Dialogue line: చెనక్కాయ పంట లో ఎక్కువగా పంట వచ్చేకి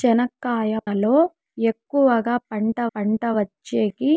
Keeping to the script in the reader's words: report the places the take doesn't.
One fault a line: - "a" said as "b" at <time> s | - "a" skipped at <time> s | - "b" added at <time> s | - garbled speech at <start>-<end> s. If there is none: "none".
- "పంట" skipped at 0.7 s
- "పంట" added at 2.9 s